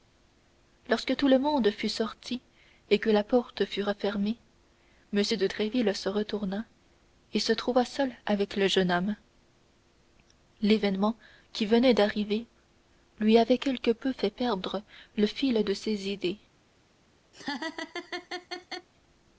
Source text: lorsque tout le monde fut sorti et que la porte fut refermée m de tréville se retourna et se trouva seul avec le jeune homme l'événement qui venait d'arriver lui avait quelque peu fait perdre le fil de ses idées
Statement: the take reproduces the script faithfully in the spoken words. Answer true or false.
true